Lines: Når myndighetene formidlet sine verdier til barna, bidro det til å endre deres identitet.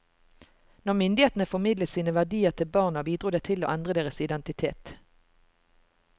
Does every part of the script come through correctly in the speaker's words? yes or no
yes